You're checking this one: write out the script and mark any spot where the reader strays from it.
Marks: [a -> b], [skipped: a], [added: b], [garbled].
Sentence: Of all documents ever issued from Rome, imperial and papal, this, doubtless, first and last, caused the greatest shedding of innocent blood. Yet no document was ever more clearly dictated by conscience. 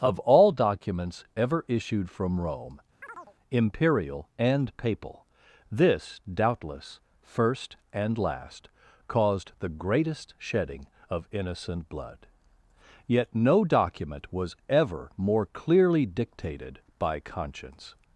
Of all documents ever issued from Rome, imperial and papal, this, doubtless, first and last, caused the greatest shedding of innocent blood. Yet no document was ever more clearly dictated by conscience.